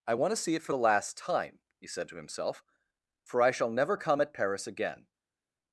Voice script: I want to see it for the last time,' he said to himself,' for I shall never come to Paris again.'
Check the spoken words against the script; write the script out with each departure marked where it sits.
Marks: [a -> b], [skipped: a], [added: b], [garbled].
I want to see it for the last time,' he said to himself,' for I shall never come [to -> at] Paris again.'